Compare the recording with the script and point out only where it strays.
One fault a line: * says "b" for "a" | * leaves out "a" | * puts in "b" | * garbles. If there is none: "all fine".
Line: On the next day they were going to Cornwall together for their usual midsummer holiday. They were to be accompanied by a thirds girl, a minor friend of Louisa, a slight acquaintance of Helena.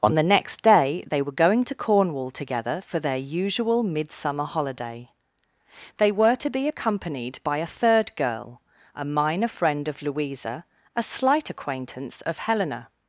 * says "third" for "thirds"